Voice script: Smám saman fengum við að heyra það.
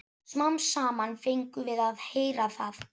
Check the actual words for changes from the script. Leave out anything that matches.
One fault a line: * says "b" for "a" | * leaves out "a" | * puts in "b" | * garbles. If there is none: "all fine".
all fine